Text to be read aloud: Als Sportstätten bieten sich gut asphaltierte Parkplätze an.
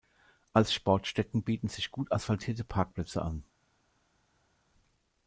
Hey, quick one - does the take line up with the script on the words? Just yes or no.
yes